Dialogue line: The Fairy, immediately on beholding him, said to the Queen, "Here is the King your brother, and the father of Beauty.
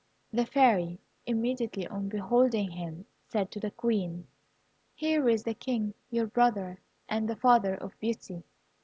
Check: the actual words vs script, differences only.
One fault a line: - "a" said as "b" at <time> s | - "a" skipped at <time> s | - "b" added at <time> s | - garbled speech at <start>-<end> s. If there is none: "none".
none